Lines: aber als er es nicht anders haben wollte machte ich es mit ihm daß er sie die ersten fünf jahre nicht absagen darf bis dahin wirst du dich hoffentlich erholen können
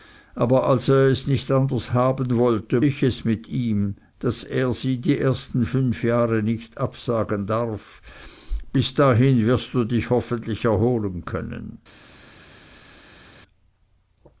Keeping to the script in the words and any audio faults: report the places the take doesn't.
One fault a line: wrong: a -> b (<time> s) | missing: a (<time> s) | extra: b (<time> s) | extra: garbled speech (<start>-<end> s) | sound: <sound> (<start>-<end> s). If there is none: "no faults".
missing: machte (2.8 s)